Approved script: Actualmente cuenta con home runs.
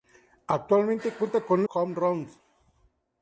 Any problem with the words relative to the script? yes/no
no